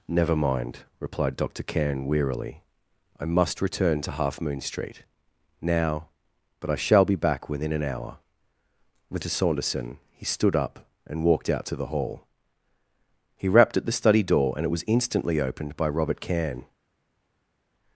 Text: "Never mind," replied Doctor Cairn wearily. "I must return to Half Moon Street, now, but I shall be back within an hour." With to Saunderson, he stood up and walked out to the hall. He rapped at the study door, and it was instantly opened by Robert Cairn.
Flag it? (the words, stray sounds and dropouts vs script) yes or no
no